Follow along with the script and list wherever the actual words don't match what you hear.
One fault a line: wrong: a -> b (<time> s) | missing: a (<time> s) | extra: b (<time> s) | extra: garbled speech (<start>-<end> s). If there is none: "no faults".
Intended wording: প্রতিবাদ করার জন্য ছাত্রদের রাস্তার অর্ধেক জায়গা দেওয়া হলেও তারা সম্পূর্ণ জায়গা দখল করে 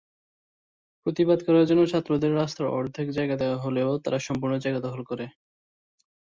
no faults